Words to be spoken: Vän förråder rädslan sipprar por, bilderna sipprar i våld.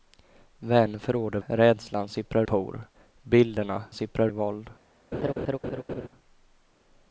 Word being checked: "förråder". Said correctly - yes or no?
yes